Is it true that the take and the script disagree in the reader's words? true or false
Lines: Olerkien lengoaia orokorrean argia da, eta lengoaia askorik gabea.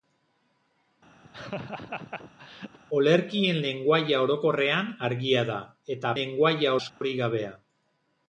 false